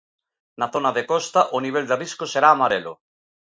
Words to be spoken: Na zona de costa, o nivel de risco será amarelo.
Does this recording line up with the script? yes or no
yes